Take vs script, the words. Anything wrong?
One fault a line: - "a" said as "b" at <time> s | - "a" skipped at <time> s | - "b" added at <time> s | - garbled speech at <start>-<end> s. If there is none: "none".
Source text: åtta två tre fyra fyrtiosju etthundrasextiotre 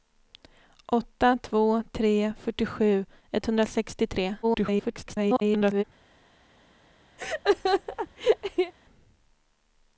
- "fyra" skipped at 2.3 s
- garbled speech at 4.4-5.8 s